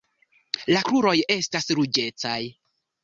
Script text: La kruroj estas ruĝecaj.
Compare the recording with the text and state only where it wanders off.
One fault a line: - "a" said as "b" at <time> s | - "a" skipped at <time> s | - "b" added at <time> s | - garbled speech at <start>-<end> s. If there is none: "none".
none